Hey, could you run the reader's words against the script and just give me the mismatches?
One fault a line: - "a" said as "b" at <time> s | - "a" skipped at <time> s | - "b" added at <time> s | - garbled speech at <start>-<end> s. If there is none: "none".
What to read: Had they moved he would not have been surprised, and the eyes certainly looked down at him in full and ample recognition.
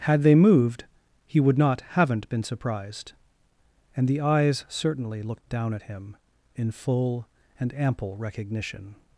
- "have" said as "haven't" at 1.9 s